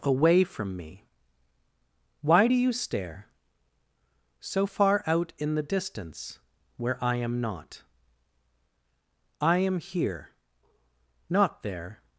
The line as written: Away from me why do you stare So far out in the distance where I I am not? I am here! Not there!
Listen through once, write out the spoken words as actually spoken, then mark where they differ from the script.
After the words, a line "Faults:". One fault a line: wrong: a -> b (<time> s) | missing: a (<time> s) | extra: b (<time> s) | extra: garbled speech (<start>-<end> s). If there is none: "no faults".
Away from me why do you stare So far out in the distance where I am not? I am here! Not there!
Faults:
missing: I (7.2 s)